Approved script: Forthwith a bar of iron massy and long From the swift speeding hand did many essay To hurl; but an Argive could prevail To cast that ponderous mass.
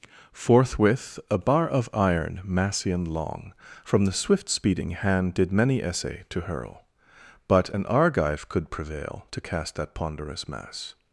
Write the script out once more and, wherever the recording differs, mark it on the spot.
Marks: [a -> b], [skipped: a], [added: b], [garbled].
Forthwith a bar of iron massy and long From the swift speeding hand did many essay To hurl; but an Argive could prevail To cast that ponderous mass.